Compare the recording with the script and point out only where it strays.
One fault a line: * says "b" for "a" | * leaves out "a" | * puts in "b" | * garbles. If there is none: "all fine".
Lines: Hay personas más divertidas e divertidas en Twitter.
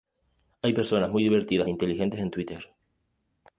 * says "muy" for "más"
* says "inteligentes" for "divertidas"